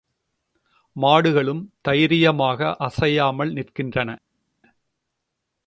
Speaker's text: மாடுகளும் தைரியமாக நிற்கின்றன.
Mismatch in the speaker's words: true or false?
true